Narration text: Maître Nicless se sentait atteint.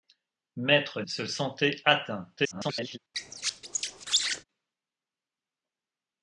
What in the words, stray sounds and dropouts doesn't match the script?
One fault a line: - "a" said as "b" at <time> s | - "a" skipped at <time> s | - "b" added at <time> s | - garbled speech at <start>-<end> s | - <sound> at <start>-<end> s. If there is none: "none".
- "Nicless" skipped at 1.0 s
- garbled speech at 2.4-3.0 s
- squeak at 3.1-4.4 s